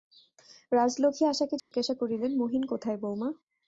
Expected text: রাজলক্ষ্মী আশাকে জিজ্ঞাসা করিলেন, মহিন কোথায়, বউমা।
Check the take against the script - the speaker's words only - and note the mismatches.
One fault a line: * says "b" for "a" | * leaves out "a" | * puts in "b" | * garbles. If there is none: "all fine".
all fine